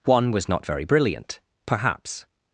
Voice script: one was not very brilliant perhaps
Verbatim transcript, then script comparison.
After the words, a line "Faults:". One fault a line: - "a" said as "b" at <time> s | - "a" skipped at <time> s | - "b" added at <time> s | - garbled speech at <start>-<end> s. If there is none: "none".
one was not very brilliant perhaps
Faults:
none